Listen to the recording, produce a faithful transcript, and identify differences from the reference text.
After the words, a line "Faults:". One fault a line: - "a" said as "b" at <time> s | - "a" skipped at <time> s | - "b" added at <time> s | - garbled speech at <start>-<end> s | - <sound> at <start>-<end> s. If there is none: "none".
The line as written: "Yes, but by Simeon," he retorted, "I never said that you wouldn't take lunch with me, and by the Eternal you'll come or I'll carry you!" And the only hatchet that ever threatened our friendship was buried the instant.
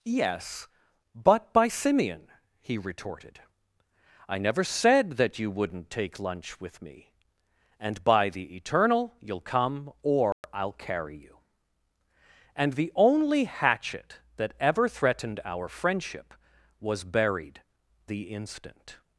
"Yes, but by Simeon," he retorted, "I never said that you wouldn't take lunch with me, and by the Eternal you'll come or I'll carry you!" And the only hatchet that ever threatened our friendship was buried the instant.
Faults:
- dropout at 10.3-10.4 s